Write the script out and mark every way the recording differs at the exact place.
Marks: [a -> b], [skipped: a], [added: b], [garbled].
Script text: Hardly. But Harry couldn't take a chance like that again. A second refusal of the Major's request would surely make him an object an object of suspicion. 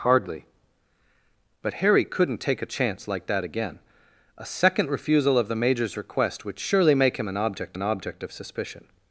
Hardly. But Harry couldn't take a chance like that again. A second refusal of the Major's request would surely make him an object an object of suspicion.